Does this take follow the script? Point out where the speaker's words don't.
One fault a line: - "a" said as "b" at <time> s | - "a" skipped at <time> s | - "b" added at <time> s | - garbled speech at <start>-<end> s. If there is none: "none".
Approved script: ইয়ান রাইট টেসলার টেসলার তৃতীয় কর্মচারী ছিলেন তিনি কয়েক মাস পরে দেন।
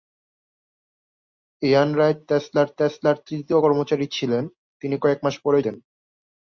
none